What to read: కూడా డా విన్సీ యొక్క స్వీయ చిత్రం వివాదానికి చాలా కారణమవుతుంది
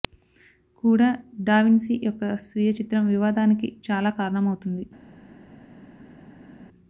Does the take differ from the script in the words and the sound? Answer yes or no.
no